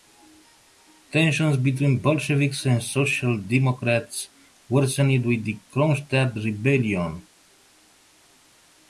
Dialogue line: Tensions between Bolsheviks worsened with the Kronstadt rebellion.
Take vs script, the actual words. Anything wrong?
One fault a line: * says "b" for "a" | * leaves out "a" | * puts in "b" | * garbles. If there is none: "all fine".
* puts in "and social democrats"